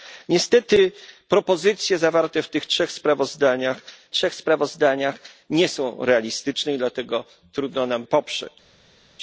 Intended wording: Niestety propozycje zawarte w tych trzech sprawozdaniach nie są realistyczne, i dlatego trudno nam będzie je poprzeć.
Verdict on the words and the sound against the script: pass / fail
fail